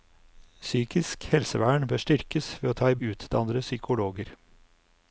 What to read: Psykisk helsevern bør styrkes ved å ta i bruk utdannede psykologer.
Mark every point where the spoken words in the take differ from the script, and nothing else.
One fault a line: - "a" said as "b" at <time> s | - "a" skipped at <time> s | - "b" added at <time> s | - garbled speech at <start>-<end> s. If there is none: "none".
- "bruk" skipped at 3.0 s